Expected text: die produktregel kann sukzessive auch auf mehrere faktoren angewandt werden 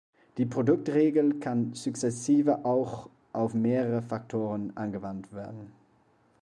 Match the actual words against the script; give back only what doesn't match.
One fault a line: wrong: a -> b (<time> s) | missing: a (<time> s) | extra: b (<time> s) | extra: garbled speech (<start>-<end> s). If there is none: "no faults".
no faults